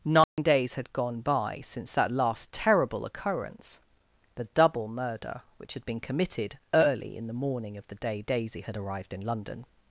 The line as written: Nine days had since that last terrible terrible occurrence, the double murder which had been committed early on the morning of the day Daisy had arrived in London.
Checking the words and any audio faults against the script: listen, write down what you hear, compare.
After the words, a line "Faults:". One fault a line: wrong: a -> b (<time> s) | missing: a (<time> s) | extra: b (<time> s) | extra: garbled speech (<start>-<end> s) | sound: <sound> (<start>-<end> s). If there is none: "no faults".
Nine days had gone by since that last terrible occurrence, the double murder which had been committed early in the morning of the day Daisy had arrived in London.
Faults:
sound: dropout (0.2-0.4 s)
extra: gone by (0.9 s)
missing: terrible (3.0 s)
wrong: on -> in (7.2 s)